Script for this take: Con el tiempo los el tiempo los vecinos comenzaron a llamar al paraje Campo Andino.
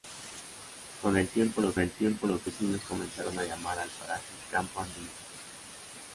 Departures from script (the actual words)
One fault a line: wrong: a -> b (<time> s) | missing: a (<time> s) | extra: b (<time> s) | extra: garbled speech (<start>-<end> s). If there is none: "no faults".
no faults